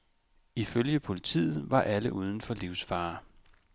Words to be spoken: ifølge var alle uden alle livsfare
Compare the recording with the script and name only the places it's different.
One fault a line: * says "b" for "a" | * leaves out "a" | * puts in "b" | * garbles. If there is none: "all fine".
* puts in "politiet"
* says "for" for "alle"